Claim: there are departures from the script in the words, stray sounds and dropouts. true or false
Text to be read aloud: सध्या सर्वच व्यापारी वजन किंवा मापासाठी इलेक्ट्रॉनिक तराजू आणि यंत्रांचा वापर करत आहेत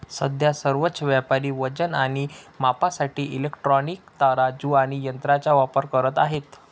true